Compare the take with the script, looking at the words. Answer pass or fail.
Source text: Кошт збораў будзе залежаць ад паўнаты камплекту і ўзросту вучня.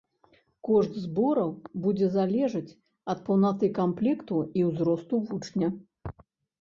pass